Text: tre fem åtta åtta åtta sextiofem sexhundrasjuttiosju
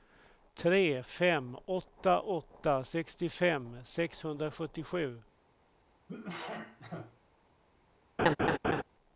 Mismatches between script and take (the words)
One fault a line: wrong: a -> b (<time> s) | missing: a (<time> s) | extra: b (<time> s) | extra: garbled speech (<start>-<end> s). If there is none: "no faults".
missing: åtta (2.8 s)